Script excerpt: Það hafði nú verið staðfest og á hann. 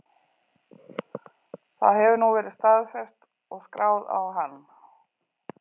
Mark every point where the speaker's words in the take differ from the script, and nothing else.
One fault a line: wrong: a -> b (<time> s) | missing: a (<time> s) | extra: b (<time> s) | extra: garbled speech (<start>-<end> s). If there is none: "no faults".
wrong: hafði -> hefur (2.0 s)
extra: skráð (3.7 s)